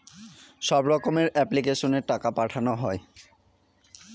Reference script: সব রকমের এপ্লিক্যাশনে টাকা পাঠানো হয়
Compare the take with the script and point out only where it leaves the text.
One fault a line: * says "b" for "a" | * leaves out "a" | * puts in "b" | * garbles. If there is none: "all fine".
all fine